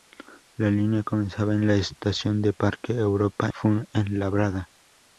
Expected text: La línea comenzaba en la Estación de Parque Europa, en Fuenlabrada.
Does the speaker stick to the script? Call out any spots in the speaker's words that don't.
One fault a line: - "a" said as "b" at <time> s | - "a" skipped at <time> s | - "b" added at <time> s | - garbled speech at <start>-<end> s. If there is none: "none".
- "en" skipped at 3.5 s